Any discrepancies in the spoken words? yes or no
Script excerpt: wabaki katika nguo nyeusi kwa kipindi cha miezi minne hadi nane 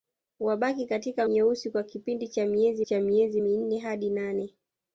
yes